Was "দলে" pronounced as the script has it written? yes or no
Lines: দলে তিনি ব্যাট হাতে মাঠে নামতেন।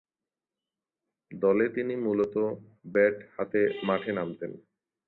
yes